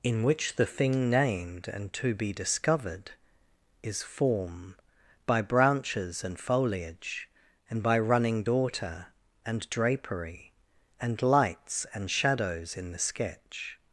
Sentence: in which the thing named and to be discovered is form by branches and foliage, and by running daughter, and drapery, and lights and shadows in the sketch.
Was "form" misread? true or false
false